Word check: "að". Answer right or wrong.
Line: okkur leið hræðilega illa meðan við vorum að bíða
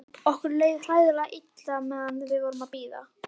right